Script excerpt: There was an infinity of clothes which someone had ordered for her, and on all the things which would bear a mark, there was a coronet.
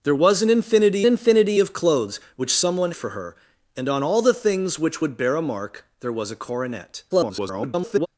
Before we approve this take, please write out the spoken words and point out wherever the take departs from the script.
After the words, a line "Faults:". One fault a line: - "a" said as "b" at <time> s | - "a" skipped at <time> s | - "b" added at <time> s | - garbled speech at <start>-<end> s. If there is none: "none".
There was an infinity infinity of clothes which someone for her, and on all the things which would bear a mark, there was a coronet. [garbled]
Faults:
- "infinity" added at 1.0 s
- "had ordered" skipped at 2.9 s
- garbled speech at 7.1-8.1 s